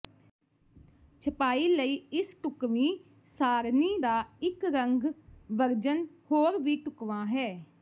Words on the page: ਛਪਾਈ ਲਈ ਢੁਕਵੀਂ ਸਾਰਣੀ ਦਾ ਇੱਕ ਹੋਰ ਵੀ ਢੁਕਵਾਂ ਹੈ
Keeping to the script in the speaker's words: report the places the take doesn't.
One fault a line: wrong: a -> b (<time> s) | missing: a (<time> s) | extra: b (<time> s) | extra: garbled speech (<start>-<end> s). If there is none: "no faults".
extra: ਇਸ (2.1 s)
extra: ਰੰਗ ਵਰਜਨ (4.7 s)